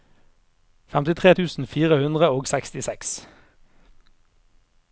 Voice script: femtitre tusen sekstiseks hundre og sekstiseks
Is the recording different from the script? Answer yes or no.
yes